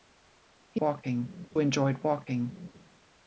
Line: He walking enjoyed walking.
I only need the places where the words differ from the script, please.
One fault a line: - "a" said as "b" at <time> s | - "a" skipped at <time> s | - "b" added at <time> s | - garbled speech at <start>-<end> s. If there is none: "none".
none